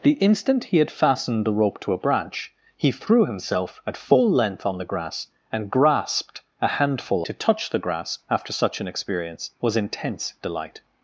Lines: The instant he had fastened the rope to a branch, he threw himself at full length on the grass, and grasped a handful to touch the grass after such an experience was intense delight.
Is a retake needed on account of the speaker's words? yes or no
no